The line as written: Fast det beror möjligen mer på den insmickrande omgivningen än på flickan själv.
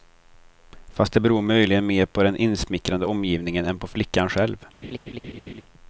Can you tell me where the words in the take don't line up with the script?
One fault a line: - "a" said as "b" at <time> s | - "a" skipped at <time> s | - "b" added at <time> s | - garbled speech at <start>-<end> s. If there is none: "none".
none